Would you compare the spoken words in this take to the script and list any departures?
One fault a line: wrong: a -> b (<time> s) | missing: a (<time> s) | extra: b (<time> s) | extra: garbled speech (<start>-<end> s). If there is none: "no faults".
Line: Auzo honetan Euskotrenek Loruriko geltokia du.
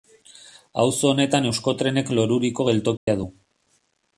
no faults